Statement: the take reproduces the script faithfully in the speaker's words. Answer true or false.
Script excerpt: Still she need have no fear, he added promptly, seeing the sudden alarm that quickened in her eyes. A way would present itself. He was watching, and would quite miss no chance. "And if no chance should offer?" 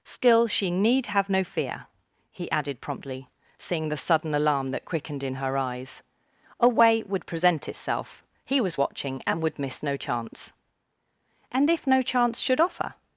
false